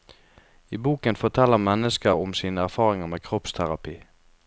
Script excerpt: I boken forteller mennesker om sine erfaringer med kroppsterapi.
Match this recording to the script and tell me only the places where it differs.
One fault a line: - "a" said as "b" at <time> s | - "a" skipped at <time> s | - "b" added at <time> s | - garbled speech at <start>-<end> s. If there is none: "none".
none